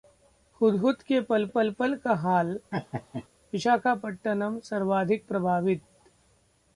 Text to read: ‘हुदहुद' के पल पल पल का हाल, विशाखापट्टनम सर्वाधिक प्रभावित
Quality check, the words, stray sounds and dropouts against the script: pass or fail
fail